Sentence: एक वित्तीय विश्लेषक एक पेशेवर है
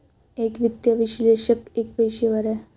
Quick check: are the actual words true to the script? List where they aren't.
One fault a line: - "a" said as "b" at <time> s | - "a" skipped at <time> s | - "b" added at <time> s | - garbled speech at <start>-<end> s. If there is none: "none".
none